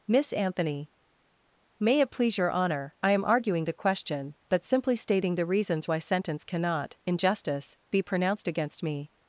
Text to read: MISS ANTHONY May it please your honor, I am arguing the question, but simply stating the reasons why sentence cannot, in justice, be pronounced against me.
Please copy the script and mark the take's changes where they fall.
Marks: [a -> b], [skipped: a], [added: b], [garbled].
MISS ANTHONY May it please your honor, I am arguing the question, but simply stating the reasons why sentence cannot, in justice, be pronounced against me.